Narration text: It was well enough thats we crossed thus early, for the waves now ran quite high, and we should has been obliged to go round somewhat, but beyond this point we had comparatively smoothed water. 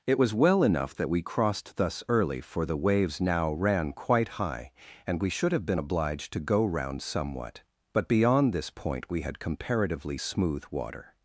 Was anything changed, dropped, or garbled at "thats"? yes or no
yes